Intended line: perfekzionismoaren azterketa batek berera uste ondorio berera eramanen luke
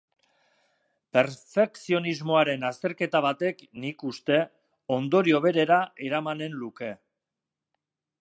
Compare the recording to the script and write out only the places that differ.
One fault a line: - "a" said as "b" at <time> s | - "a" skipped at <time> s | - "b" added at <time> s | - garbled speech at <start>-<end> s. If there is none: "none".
- "berera" said as "nik" at 3.8 s